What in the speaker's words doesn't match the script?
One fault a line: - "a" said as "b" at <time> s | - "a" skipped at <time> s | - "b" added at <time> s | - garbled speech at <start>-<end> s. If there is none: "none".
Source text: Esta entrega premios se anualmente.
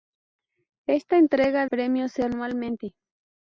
none